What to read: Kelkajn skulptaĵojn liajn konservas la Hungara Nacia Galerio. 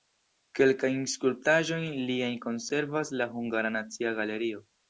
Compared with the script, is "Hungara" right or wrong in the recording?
right